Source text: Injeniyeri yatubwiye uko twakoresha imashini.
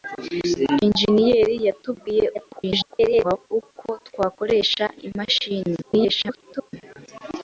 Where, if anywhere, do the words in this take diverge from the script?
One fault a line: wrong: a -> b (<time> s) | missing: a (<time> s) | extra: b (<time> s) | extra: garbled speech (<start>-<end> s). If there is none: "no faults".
extra: garbled speech (2.3-3.5 s)
extra: garbled speech (5.8-6.7 s)